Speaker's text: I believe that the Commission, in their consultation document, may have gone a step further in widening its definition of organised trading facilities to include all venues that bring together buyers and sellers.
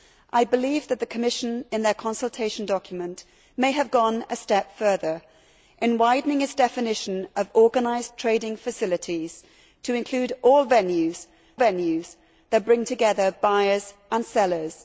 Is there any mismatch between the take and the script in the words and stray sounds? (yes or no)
yes